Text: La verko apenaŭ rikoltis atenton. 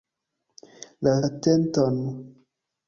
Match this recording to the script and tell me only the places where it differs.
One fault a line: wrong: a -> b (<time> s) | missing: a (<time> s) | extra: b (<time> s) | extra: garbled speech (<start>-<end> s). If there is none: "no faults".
missing: verko apenaŭ rikoltis (1.1 s)